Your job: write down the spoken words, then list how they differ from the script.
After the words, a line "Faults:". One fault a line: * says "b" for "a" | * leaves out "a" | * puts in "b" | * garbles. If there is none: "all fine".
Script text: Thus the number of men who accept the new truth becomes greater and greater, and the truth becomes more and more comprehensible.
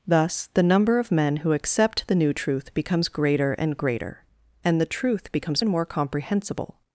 Thus the number of men who accept the new truth becomes greater and greater, and the truth becomes and more comprehensible.
Faults:
* leaves out "more"